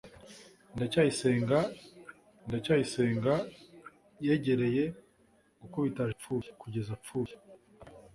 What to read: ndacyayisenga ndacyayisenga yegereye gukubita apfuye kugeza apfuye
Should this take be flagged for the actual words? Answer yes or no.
no